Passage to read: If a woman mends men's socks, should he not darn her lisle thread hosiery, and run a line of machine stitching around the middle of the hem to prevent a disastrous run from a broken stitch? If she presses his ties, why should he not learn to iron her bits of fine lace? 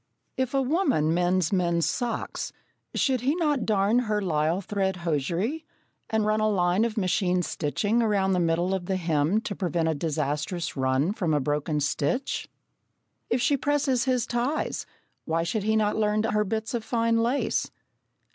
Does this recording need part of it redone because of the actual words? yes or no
yes